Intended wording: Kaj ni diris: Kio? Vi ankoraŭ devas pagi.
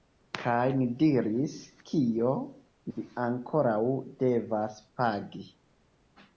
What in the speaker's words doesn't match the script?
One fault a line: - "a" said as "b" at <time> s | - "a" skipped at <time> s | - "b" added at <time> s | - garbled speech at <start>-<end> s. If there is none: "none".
none